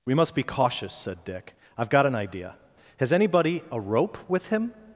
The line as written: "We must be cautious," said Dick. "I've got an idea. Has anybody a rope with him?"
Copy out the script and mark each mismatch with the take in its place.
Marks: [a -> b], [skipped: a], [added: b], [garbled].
"We must be cautious," said Dick. "I've got an idea. Has anybody a rope with him?"